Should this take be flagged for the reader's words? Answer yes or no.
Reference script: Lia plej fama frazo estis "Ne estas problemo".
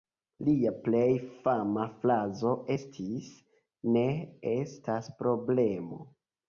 no